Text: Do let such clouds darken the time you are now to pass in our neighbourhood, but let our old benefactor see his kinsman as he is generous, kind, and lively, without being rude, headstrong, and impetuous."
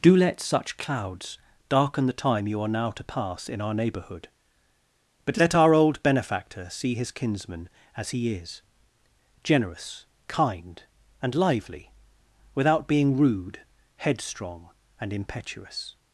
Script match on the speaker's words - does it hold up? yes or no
yes